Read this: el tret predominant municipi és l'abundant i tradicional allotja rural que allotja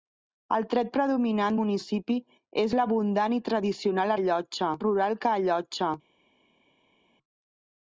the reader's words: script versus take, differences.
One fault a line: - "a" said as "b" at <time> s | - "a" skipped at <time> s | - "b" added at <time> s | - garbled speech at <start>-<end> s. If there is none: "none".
none